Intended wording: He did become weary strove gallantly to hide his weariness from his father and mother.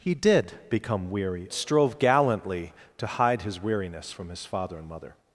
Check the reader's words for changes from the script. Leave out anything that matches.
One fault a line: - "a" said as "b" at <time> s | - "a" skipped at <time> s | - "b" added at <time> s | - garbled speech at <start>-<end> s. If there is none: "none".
none